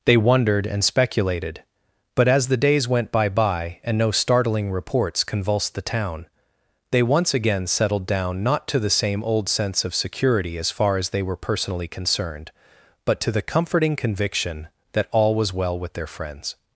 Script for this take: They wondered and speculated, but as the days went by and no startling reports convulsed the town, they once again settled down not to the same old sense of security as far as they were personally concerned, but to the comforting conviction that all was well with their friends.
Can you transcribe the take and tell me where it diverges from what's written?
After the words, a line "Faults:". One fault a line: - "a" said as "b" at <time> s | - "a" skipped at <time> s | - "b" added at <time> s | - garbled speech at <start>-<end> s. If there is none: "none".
They wondered and speculated, but as the days went by by and no startling reports convulsed the town, they once again settled down not to the same old sense of security as far as they were personally concerned, but to the comforting conviction that all was well with their friends.
Faults:
- "by" added at 3.3 s